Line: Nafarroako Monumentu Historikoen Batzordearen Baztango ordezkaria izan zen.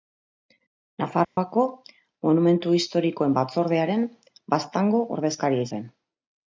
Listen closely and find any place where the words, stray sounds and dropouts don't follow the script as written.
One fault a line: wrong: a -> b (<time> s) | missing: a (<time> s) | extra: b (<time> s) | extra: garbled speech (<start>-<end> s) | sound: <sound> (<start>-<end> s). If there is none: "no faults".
sound: dropout (1.2-1.4 s)
missing: izan (5.7 s)